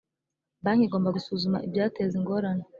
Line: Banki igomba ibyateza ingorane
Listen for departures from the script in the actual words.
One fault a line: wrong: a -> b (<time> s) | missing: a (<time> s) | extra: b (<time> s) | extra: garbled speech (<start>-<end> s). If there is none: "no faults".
extra: gusuzuma (1.1 s)